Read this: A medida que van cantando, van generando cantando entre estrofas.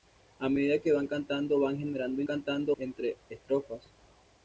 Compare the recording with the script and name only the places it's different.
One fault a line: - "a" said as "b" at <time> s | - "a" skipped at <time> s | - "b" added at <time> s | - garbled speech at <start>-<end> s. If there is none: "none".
none